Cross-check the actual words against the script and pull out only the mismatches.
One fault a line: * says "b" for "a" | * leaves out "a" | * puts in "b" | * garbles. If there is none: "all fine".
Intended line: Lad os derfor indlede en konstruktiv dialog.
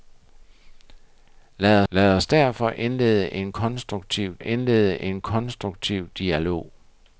* puts in "lad"
* puts in "indlede en konstruktiv"